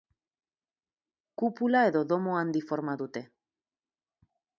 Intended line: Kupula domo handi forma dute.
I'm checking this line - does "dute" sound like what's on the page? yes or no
yes